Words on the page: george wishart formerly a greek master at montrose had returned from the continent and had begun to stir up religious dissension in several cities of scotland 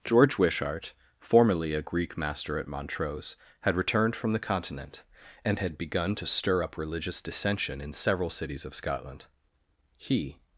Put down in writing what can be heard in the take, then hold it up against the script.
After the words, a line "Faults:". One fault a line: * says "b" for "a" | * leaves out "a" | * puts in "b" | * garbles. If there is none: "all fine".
george wishart formerly a greek master at montrose had returned from the continent and had begun to stir up religious dissension in several cities of scotland he
Faults:
* puts in "he"